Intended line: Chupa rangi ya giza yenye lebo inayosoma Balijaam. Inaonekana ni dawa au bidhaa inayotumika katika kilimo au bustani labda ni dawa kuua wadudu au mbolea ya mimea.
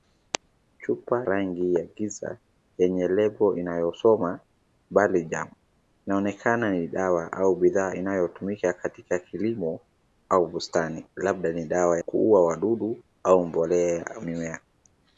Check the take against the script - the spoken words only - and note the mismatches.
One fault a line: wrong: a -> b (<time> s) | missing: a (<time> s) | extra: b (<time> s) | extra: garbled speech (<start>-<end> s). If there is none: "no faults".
no faults